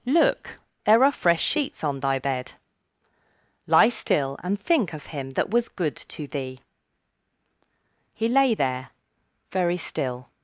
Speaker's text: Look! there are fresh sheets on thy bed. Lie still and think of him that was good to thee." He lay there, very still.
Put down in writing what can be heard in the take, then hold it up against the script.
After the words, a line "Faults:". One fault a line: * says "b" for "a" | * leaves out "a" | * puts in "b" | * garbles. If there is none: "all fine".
Look! there are fresh sheets on thy bed. Lie still and think of him that was good to thee." He lay there, very still.
Faults:
all fine